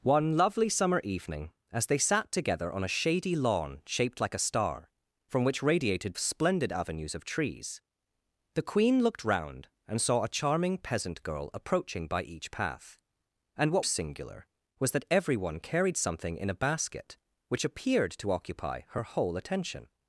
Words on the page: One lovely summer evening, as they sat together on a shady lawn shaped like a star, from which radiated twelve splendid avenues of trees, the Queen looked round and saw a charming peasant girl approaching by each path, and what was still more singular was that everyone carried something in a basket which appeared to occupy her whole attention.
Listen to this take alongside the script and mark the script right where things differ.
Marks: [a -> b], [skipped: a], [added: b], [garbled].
One lovely summer evening, as they sat together on a shady lawn shaped like a star, from which radiated [skipped: twelve] splendid avenues of trees, the Queen looked round and saw a charming peasant girl approaching by each path, and what [skipped: was still more] singular was that everyone carried something in a basket which appeared to occupy her whole attention.